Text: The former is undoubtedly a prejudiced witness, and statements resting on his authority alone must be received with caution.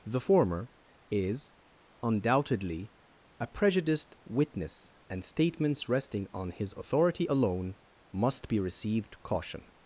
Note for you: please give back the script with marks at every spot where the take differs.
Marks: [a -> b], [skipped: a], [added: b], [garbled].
The former is undoubtedly a prejudiced witness, and statements resting on his authority alone must be received [skipped: with] caution.